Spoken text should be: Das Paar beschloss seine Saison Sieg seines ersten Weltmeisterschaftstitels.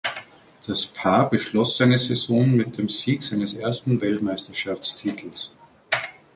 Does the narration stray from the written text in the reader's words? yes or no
yes